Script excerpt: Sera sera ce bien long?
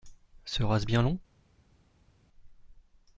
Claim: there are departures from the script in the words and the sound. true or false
true